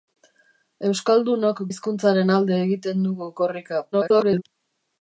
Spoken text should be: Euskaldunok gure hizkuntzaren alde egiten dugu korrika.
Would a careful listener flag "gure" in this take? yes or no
yes